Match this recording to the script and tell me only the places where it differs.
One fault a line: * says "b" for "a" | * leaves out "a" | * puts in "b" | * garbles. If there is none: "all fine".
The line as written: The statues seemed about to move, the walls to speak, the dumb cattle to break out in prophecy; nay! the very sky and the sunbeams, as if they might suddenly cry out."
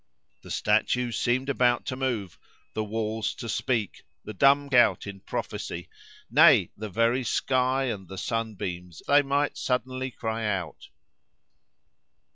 * leaves out "cattle to break"
* leaves out "as if"